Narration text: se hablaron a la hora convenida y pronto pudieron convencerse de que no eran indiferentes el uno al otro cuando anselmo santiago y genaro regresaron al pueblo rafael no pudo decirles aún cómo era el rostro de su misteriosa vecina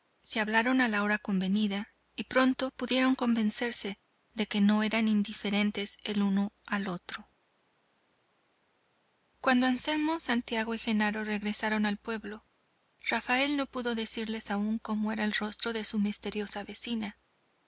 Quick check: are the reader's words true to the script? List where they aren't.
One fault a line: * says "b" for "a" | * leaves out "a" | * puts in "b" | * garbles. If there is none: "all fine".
all fine